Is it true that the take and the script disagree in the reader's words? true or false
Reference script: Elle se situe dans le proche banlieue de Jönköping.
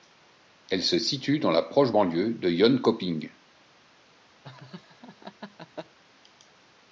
true